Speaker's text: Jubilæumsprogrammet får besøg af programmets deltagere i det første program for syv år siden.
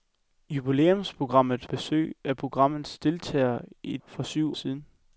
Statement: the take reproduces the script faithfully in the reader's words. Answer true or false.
false